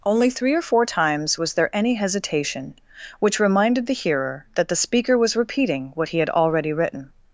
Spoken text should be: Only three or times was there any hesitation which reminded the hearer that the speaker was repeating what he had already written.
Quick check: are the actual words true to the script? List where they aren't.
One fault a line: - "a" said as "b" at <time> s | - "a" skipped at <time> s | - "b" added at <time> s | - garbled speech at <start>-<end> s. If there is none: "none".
- "four" added at 0.6 s